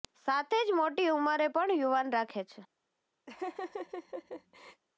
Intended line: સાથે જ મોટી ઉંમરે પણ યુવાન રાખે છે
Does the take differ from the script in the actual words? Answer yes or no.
no